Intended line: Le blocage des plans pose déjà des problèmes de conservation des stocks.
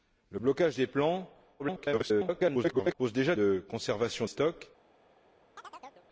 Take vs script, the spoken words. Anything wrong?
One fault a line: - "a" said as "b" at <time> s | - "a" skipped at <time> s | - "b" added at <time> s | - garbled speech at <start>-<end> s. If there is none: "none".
- garbled speech at 1.6-2.9 s
- "des problèmes" skipped at 3.3 s
- "des" skipped at 4.3 s